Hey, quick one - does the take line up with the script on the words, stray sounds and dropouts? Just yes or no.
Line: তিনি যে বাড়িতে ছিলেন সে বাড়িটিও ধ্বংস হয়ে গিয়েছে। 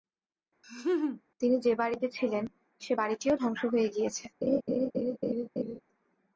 no